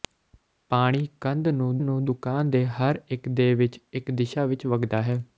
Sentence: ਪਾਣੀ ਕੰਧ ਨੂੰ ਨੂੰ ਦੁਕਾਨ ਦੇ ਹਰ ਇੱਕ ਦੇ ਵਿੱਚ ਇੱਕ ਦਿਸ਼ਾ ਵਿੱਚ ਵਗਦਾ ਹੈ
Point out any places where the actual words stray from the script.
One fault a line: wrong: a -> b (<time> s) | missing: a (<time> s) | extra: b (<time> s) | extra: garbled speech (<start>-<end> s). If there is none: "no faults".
no faults